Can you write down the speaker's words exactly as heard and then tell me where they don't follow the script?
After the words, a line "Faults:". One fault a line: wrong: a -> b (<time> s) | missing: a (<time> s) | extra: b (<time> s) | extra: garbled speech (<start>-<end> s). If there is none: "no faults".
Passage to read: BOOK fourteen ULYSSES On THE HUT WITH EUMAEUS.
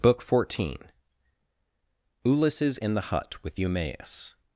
BOOK fourteen ULYSSES IN THE HUT WITH EUMAEUS.
Faults:
wrong: On -> IN (2.8 s)